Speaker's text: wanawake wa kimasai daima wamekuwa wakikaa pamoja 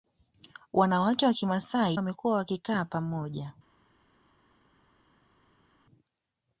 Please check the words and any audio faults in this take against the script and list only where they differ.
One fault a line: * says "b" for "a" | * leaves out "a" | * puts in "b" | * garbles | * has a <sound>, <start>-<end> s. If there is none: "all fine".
* leaves out "daima"